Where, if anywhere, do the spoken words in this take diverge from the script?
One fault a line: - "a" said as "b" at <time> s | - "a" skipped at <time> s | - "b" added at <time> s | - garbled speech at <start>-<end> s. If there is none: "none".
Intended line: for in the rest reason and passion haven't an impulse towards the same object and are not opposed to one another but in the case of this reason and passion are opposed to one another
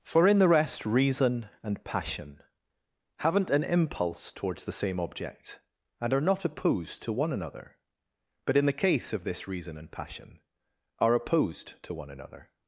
none